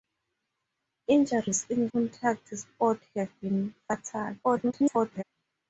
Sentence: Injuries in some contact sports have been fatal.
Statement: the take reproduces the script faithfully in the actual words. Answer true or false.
false